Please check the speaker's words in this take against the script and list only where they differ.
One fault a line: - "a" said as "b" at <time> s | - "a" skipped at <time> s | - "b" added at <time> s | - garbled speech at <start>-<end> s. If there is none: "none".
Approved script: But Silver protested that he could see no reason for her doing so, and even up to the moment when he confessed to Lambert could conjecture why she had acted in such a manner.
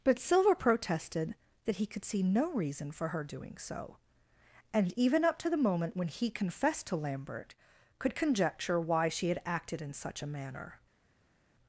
none